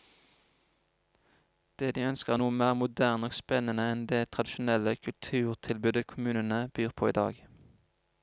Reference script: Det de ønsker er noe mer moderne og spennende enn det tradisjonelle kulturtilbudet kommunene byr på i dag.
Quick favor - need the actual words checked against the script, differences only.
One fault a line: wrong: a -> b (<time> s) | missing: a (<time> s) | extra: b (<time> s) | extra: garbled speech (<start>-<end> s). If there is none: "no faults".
no faults